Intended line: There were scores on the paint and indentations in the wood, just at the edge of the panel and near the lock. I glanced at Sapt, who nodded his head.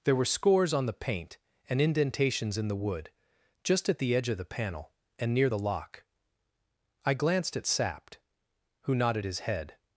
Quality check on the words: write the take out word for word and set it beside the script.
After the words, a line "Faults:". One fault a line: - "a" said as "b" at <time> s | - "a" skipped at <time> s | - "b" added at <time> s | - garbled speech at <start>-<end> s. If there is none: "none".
There were scores on the paint and indentations in the wood, just at the edge of the panel and near the lock. I glanced at Sapt, who nodded his head.
Faults:
none